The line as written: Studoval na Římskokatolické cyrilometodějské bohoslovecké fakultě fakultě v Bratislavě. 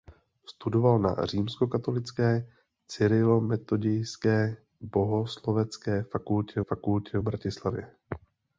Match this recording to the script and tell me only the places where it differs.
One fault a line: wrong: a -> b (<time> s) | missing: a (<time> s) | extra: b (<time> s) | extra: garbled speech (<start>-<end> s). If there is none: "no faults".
no faults